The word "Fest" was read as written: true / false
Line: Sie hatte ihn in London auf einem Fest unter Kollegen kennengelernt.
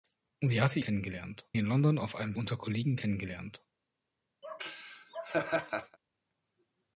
false